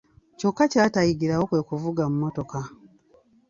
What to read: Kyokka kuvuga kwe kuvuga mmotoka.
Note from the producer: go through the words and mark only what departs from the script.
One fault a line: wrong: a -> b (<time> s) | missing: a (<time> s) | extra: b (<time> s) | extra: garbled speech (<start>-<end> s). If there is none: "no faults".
wrong: kuvuga -> ky'atayigirawo (0.7 s)